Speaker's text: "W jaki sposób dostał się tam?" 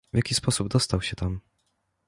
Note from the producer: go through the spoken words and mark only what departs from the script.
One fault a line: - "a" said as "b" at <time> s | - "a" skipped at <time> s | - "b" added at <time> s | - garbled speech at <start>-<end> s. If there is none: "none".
none